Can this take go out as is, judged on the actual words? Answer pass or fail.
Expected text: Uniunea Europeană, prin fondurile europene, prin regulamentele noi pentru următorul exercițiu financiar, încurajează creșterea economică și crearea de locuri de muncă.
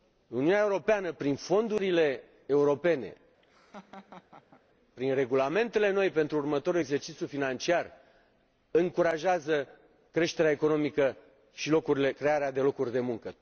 pass